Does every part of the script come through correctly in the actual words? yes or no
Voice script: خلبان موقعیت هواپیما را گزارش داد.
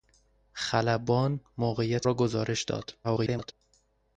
no